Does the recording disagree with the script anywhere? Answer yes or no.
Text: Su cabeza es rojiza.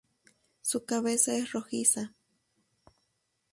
no